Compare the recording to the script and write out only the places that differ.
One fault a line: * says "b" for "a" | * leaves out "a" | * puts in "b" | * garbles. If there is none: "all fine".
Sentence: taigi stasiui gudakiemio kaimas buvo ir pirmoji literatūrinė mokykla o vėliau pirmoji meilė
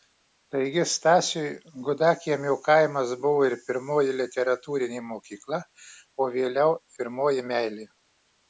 all fine